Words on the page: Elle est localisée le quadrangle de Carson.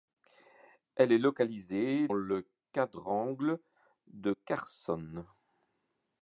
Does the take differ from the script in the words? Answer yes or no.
no